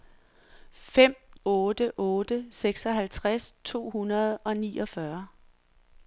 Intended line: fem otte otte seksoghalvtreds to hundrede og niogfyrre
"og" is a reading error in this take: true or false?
false